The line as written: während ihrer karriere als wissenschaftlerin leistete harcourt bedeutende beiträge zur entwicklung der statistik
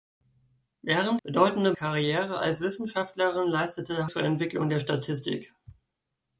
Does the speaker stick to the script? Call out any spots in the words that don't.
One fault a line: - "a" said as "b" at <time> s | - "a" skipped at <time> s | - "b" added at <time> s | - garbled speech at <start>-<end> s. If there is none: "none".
- "ihrer" said as "bedeutende" at 1.2 s
- "harcourt bedeutende beiträge" skipped at 4.1 s